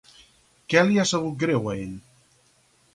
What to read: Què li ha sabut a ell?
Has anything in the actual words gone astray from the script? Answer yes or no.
yes